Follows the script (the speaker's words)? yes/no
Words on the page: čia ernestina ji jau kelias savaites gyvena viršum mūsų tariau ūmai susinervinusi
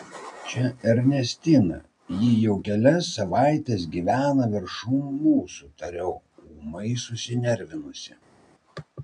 yes